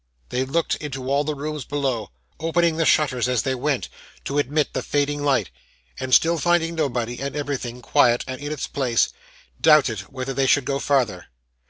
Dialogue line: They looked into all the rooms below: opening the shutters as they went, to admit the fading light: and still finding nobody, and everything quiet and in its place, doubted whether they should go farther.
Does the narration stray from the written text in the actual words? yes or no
no